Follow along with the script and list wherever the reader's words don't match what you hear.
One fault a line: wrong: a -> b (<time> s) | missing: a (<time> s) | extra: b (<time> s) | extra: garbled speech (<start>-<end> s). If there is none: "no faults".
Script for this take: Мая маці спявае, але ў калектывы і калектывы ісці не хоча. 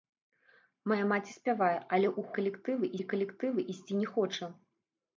no faults